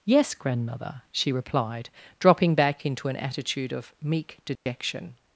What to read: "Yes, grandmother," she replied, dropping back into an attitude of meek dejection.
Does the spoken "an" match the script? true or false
true